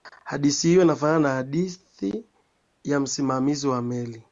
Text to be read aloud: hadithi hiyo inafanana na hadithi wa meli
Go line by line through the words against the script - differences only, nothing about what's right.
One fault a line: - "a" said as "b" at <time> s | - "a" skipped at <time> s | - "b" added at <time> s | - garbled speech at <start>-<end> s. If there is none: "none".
- "ya msimamizi" added at 2.8 s